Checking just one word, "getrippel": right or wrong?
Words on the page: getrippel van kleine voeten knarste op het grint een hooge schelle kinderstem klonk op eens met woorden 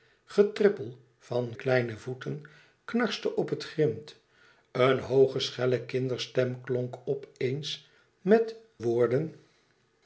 right